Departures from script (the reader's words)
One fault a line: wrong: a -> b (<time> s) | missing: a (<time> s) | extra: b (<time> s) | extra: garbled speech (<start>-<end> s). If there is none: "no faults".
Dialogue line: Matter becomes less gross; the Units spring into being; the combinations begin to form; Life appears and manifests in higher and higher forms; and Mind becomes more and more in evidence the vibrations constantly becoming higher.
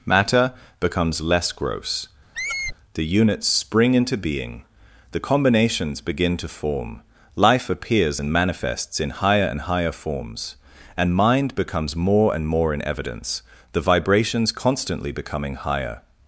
no faults